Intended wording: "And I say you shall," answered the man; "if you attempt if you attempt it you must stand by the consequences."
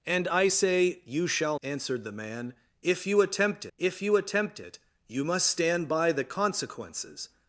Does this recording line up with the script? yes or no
yes